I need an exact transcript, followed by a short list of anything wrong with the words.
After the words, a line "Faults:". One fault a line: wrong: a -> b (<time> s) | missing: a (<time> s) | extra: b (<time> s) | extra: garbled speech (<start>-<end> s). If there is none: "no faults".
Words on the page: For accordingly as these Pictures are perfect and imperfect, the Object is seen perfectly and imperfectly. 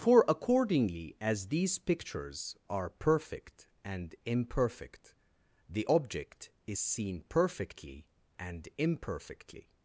For accordingly as these Pictures are perfect and imperfect, the Object is seen perfectly and imperfectly.
Faults:
no faults